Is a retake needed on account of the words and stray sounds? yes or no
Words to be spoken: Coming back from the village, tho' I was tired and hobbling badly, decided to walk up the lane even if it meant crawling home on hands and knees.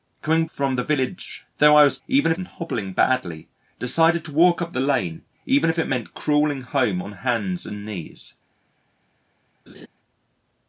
yes